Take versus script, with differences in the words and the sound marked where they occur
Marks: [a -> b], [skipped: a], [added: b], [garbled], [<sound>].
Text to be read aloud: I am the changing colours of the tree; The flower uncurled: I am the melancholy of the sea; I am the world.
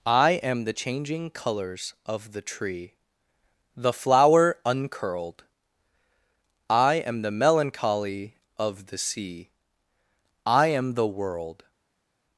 I am the changing colours of the tree; The flower uncurled: I am the melancholy of the sea; I am the world.